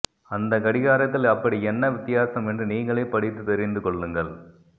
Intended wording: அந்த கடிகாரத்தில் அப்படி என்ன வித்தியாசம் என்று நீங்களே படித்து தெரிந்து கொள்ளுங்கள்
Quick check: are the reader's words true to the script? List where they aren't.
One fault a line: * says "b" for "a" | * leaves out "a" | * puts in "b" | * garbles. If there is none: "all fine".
all fine